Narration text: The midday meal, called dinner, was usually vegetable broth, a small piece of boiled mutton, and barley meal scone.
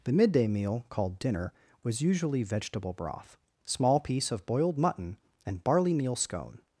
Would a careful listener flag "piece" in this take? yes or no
no